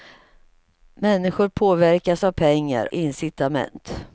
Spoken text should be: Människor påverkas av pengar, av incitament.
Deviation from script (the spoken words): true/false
true